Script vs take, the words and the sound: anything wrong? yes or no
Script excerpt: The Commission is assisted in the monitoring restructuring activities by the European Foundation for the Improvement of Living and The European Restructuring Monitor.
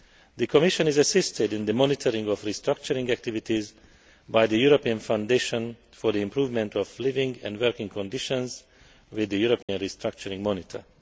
yes